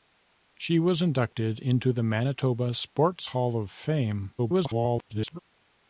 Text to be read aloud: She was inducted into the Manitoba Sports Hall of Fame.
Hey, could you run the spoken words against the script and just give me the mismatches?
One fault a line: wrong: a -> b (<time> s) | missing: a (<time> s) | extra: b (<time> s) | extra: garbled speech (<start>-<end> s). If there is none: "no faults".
extra: garbled speech (4.4-5.4 s)